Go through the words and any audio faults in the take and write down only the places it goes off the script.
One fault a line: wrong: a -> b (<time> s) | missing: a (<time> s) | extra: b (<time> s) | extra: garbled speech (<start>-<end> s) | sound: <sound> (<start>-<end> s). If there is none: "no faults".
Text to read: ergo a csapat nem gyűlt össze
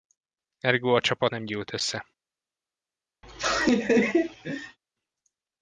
sound: laugh (3.2-4.8 s)